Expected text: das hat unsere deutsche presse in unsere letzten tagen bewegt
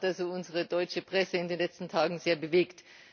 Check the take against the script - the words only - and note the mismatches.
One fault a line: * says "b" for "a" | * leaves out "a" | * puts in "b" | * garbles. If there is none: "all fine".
* says "den" for "unsere"
* puts in "sehr"